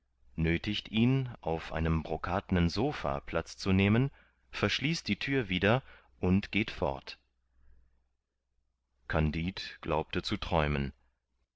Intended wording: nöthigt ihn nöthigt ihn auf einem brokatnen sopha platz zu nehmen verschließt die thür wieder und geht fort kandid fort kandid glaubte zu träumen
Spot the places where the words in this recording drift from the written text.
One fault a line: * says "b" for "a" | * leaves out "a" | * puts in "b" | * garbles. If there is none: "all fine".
* leaves out "nöthigt ihn"
* leaves out "fort kandid"